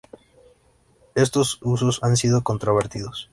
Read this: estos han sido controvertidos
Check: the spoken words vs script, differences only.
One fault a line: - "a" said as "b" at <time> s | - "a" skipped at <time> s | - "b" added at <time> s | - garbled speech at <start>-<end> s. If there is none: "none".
- "usos" added at 1.6 s